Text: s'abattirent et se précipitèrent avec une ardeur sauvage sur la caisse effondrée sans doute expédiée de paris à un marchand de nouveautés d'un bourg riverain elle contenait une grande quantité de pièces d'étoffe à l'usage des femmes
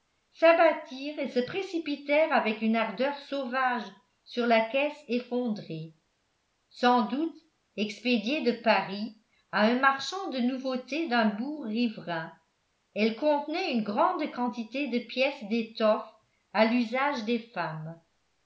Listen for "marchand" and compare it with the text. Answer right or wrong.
right